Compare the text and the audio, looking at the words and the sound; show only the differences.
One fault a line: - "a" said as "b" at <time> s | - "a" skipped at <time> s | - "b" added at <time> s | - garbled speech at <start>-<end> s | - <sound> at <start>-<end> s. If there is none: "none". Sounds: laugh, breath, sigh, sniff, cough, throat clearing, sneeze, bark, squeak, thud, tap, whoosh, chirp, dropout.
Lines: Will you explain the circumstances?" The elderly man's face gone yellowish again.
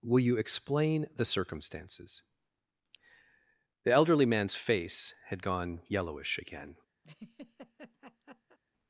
- "had" added at 5.3 s
- laugh at 7.0-8.6 s